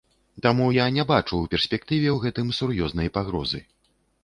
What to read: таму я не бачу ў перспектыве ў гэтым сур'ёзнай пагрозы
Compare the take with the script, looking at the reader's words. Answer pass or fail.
pass